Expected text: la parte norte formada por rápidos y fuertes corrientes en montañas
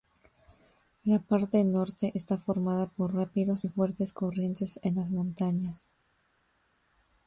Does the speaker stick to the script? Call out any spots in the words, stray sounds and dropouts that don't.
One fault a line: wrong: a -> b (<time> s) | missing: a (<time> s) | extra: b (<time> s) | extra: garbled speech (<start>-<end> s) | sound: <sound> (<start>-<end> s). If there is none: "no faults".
extra: está (2.1 s)
extra: las (5.0 s)